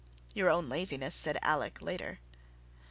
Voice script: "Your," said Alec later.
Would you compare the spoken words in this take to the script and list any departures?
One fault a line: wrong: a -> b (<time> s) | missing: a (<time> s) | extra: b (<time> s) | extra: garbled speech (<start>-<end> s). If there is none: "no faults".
extra: own laziness (0.5 s)